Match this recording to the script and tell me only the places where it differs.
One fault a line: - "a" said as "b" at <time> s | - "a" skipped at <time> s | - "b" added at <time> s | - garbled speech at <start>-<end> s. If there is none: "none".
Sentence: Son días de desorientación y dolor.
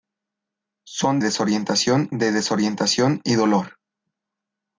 - "días" said as "desorientación" at 1.2 s